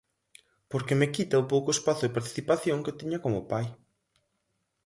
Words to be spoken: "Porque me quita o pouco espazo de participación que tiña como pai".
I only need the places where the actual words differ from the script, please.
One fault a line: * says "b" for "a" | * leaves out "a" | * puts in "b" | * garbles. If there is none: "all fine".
all fine